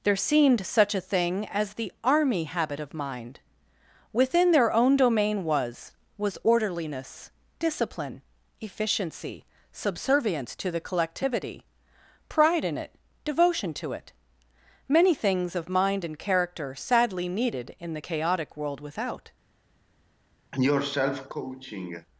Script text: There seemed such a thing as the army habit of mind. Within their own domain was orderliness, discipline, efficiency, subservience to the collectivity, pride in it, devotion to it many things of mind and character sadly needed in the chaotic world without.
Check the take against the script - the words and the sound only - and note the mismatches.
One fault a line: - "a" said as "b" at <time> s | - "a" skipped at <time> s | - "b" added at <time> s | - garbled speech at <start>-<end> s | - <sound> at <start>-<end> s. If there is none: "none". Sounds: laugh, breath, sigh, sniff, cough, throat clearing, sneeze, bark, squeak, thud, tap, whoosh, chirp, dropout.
- "was" added at 6.2 s
- cough at 20.5-22.1 s